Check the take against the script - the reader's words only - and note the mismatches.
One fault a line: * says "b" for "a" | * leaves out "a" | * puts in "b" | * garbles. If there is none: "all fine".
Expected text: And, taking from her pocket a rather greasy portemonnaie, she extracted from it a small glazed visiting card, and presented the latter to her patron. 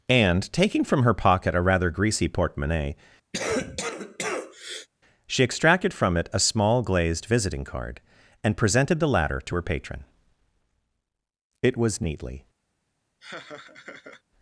* puts in "It was neatly"